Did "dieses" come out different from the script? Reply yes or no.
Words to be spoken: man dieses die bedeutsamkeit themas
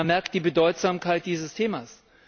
yes